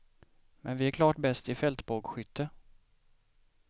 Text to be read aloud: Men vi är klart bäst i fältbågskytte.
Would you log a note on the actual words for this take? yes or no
no